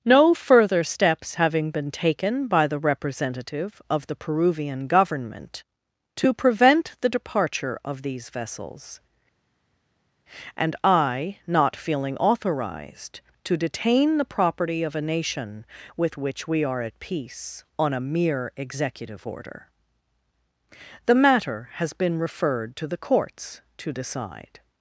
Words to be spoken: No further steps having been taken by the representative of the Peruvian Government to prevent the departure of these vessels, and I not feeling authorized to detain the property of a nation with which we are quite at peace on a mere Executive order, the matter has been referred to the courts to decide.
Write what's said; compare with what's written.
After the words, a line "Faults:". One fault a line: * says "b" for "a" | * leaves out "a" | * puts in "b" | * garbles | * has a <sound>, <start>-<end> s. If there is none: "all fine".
No further steps having been taken by the representative of the Peruvian Government to prevent the departure of these vessels, and I not feeling authorized to detain the property of a nation with which we are at peace on a mere Executive order, the matter has been referred to the courts to decide.
Faults:
* leaves out "quite"